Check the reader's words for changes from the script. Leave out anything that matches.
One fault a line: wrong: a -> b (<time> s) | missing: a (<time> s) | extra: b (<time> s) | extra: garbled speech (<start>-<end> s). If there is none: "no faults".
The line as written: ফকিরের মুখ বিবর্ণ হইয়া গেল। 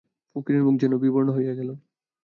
extra: যেন (0.8 s)